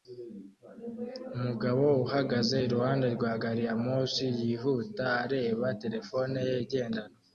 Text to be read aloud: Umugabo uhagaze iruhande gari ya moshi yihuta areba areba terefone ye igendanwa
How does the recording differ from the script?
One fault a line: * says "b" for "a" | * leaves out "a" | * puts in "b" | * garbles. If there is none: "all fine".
* puts in "rwa"
* leaves out "areba"